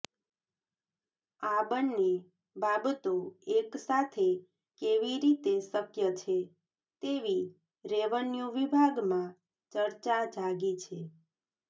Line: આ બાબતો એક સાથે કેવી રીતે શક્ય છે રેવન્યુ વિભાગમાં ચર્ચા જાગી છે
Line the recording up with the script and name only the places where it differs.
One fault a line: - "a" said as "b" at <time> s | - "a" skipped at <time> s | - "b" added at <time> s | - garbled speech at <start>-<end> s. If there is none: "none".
- "બંને" added at 1.7 s
- "તેવી" added at 7.0 s